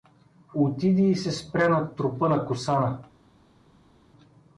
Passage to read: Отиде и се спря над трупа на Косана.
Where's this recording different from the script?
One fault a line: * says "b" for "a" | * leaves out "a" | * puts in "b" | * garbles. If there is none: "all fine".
all fine